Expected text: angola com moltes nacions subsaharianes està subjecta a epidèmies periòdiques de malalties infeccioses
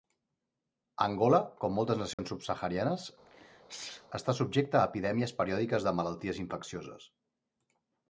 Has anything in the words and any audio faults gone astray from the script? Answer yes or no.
yes